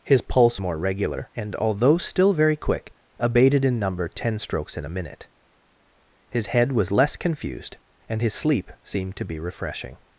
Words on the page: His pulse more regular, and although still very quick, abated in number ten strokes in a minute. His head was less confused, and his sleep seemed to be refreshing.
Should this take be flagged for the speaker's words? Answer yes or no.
no